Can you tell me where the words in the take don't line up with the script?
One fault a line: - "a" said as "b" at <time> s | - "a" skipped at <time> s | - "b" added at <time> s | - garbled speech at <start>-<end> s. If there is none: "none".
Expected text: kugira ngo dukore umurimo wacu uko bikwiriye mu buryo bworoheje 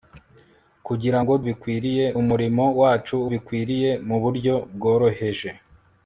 - "dukore" said as "bikwiriye" at 1.5 s
- "uko" skipped at 3.2 s